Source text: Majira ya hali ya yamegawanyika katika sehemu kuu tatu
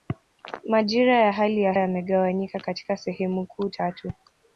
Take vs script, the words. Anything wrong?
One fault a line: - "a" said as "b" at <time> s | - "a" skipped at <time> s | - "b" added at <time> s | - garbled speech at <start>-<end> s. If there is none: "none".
none